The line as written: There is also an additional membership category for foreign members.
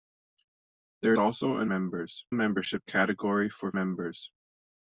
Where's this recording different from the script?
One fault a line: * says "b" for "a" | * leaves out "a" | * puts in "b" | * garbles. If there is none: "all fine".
* leaves out "is"
* says "members" for "additional"
* leaves out "foreign"